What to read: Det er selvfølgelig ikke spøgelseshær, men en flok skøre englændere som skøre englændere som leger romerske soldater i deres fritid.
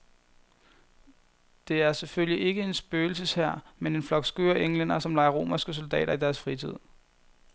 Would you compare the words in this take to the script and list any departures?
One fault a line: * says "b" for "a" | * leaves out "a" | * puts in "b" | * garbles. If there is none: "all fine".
* puts in "en"
* leaves out "skøre englændere som"